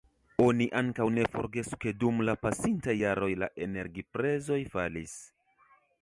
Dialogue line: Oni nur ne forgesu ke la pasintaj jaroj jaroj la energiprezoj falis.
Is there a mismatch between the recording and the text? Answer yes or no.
yes